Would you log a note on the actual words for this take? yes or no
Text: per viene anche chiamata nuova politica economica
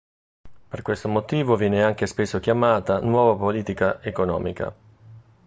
yes